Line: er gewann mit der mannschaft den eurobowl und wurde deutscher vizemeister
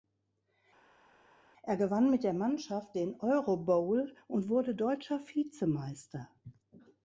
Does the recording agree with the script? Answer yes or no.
yes